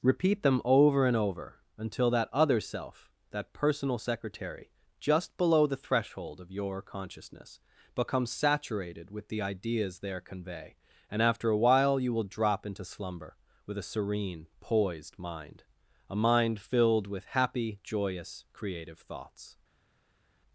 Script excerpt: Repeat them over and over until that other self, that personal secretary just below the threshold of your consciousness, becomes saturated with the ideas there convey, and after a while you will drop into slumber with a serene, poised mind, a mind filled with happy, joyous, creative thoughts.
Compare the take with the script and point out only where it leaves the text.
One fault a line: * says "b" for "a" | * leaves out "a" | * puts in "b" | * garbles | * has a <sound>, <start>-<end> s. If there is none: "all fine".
all fine